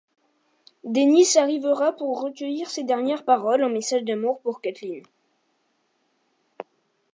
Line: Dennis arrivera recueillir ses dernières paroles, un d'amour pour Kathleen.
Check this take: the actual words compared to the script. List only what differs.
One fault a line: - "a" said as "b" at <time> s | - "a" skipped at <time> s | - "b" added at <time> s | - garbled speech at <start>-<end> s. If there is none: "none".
- "pour" added at 1.9 s
- "message" added at 3.7 s